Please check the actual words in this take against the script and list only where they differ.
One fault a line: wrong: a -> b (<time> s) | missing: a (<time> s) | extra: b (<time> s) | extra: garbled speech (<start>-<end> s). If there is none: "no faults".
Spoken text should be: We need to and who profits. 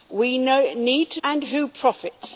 no faults